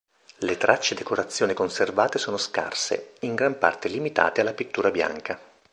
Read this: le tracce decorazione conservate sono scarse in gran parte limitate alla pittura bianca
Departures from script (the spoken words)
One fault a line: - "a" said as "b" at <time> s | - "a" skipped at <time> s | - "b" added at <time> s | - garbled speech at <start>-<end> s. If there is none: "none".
none